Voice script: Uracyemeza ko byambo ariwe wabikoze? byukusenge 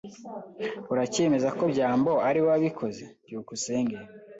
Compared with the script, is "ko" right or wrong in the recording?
right